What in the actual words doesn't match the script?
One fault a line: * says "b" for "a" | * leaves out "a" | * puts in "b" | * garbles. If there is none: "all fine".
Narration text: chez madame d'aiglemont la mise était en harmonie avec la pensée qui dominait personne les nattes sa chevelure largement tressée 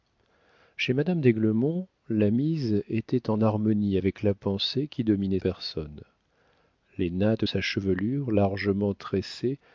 all fine